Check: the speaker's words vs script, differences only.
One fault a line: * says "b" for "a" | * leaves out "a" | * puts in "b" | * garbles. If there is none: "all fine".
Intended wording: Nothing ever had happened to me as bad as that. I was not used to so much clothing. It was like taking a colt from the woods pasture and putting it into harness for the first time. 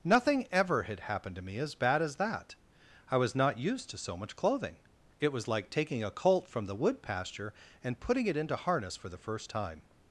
* says "wood" for "woods"